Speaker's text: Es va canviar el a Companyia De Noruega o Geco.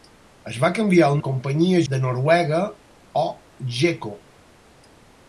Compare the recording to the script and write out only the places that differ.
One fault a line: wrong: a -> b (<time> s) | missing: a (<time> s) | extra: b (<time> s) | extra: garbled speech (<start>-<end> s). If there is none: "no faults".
no faults